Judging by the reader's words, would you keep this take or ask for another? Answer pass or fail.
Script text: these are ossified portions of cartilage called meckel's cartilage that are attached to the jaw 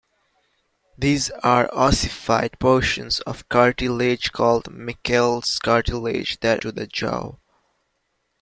fail